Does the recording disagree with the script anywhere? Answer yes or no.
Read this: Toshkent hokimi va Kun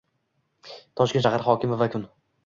yes